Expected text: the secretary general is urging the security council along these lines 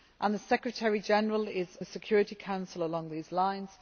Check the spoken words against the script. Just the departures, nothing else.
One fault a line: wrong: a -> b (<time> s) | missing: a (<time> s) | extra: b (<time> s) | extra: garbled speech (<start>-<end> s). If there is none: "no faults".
missing: urging (1.8 s)